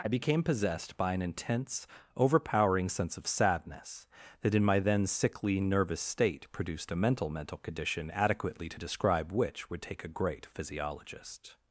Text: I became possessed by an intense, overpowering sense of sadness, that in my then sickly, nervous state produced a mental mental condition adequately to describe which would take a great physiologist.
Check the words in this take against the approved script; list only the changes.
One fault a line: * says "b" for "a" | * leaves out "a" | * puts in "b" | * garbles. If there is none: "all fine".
all fine